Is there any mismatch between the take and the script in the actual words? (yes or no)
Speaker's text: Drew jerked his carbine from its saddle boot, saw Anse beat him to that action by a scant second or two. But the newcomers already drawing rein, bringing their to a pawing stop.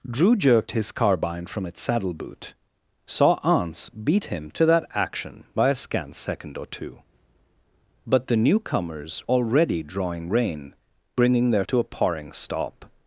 no